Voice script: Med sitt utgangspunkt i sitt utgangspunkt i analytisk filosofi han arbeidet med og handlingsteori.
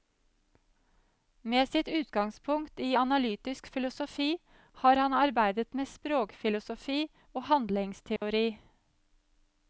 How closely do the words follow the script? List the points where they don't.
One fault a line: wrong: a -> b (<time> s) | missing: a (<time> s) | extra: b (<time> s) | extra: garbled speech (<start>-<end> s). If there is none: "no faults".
missing: sitt utgangspunkt i (3.0 s)
extra: har (4.7 s)
extra: språkfilosofi (5.9 s)